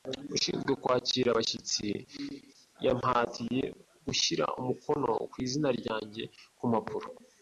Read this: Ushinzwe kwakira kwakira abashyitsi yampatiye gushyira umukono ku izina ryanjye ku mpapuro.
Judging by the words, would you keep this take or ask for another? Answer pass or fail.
fail